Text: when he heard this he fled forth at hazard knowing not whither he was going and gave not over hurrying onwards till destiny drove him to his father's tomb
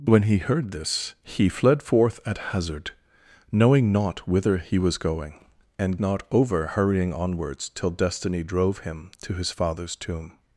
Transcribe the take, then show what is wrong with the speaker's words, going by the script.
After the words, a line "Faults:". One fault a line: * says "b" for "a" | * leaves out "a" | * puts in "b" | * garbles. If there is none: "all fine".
when he heard this he fled forth at hazard knowing not whither he was going and not over hurrying onwards till destiny drove him to his father's tomb
Faults:
* leaves out "gave"